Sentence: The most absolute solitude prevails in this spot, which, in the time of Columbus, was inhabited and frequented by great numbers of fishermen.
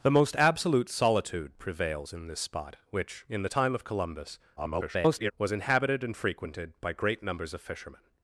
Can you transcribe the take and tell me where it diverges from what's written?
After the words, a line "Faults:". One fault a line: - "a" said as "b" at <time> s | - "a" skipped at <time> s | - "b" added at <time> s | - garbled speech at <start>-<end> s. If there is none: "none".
The most absolute solitude prevails in this spot, which, in the time of Columbus, [garbled] was inhabited and frequented by great numbers of fishermen.
Faults:
- garbled speech at 4.6-5.3 s